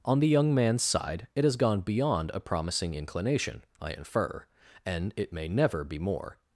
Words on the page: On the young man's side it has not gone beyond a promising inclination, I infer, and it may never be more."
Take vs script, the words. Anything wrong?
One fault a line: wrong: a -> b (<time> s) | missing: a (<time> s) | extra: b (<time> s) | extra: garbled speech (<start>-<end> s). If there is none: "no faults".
missing: not (1.6 s)